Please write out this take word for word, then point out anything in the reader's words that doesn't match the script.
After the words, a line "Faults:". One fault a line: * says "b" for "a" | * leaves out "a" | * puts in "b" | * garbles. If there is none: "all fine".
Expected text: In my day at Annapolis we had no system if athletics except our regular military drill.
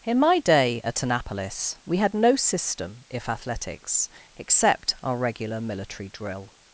In my day at Annapolis we had no system if athletics except our regular military drill.
Faults:
all fine